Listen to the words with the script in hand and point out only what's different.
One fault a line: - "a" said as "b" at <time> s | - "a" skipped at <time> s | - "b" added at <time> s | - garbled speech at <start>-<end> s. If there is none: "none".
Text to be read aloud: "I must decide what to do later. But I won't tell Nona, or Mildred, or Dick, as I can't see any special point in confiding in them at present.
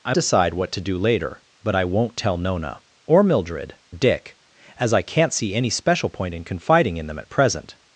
- "must" skipped at 0.1 s
- "or" skipped at 3.7 s